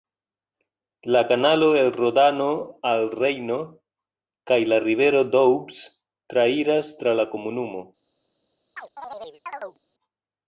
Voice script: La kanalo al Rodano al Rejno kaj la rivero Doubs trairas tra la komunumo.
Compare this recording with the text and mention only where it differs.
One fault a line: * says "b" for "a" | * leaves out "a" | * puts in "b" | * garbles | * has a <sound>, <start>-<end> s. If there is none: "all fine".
* says "el" for "al"
* has a chirp, 8.8-9.8 s